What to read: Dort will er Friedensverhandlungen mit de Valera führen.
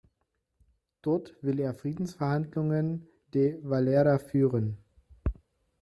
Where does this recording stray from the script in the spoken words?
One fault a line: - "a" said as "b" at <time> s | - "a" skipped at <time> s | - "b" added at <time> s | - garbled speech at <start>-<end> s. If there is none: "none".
- "mit" skipped at 3.1 s